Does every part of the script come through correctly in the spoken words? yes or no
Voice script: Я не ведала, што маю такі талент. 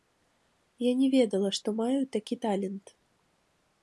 yes